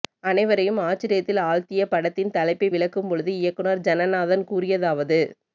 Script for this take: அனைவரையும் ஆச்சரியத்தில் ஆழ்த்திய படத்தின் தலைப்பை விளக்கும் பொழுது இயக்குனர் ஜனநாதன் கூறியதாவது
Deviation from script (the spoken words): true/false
false